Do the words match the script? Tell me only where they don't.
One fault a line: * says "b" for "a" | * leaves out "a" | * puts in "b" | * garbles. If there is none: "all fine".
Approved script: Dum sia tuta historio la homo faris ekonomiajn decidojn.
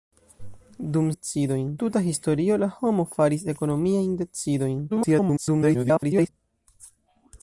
* says "decidojn" for "sia"
* garbles